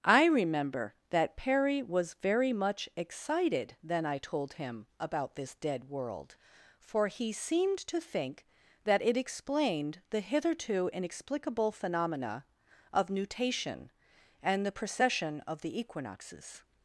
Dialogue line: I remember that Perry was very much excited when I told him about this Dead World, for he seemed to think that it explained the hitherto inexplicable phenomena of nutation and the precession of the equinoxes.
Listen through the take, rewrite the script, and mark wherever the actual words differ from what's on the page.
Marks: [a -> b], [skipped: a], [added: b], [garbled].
I remember that Perry was very much excited [when -> then] I told him about this Dead World, for he seemed to think that it explained the hitherto inexplicable phenomena of nutation and the precession of the equinoxes.